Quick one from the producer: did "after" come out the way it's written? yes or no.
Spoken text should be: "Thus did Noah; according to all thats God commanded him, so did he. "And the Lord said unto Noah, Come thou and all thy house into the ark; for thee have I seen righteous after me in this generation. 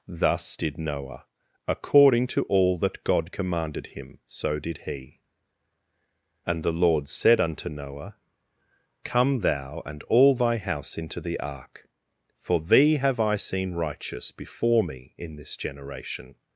no